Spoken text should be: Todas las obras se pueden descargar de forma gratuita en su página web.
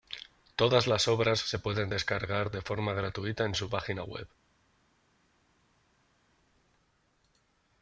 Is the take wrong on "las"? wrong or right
right